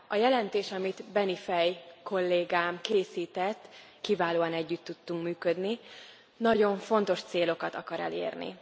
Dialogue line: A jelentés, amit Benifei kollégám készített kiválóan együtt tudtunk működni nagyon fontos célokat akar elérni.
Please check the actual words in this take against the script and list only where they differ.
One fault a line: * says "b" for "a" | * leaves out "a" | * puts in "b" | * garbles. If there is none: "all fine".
all fine